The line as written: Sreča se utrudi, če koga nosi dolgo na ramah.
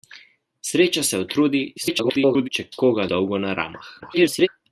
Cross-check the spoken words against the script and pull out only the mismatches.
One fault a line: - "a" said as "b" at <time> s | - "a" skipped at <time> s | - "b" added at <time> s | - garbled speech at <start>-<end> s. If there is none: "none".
- garbled speech at 1.8-2.5 s
- "nosi" skipped at 3.1 s
- garbled speech at 4.0-4.5 s